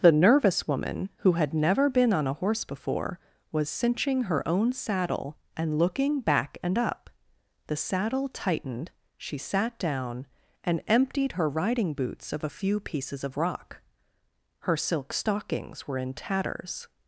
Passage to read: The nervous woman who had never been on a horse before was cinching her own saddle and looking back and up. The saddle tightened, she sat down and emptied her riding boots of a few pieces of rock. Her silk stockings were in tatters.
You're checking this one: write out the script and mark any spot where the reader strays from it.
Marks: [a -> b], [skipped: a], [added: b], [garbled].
The nervous woman who had never been on a horse before was cinching her own saddle and looking back and up. The saddle tightened, she sat down and emptied her riding boots of a few pieces of rock. Her silk stockings were in tatters.